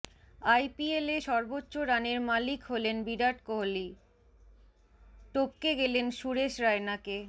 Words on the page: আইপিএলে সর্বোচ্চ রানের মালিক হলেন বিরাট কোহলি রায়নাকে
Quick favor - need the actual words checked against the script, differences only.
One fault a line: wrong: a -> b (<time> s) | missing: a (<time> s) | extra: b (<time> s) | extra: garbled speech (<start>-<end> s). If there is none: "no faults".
extra: টপকে গেলেন সুরেশ (5.3 s)